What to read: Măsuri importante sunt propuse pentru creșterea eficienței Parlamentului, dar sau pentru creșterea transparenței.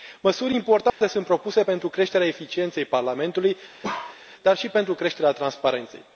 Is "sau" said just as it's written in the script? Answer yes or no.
no